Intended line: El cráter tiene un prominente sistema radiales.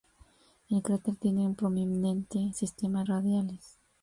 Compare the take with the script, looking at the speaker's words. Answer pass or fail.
pass